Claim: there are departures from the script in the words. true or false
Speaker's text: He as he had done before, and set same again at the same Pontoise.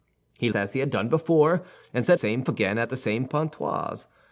false